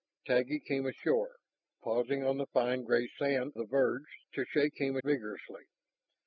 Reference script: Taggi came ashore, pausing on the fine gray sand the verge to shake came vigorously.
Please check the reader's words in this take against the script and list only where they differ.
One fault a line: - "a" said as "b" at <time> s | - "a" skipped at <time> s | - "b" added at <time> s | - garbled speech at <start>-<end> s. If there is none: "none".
none